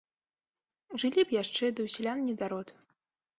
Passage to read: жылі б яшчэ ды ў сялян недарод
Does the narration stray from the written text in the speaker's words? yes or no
no